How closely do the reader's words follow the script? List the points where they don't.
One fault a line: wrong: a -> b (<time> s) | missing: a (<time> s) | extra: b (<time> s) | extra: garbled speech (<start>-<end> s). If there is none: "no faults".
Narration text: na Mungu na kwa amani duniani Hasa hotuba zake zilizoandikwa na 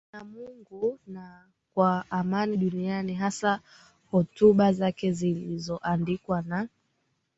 no faults